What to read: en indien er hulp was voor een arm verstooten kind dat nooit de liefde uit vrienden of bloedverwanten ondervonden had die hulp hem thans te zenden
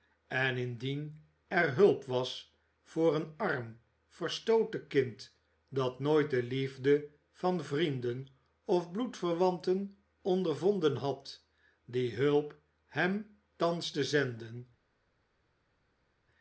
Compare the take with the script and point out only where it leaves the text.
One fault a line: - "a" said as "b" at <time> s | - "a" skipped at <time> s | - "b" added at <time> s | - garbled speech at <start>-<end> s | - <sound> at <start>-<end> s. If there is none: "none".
- "uit" said as "van" at 7.3 s